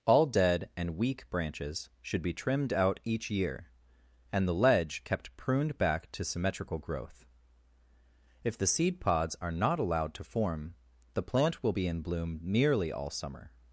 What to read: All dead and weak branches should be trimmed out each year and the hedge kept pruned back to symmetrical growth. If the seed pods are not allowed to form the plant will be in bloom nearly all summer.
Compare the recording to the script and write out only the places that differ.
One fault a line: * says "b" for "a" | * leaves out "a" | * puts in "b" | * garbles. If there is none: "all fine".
* says "ledge" for "hedge"